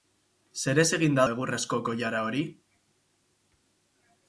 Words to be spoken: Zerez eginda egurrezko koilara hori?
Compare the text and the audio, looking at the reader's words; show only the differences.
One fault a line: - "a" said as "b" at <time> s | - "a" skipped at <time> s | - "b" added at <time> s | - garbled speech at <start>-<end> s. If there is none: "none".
none